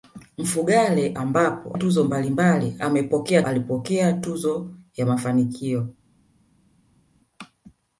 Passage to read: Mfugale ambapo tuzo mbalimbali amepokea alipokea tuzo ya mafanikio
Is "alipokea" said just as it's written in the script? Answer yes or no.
yes